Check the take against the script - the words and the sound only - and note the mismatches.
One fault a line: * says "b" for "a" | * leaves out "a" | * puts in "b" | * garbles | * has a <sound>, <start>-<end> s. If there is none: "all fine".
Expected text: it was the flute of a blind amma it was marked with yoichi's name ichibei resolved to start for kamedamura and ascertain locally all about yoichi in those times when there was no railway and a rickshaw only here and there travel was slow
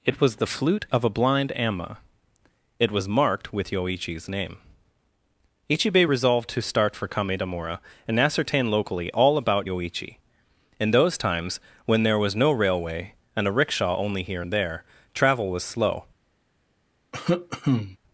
* has a cough, 17.1-18.0 s